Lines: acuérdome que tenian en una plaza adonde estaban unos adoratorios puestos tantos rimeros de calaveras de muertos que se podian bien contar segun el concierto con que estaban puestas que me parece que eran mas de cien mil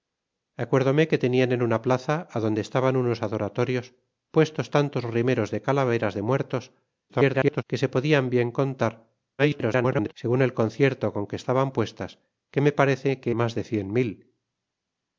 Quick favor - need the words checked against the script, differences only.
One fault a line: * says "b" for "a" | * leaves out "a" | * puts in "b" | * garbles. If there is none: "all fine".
* garbles
* garbles
* leaves out "eran"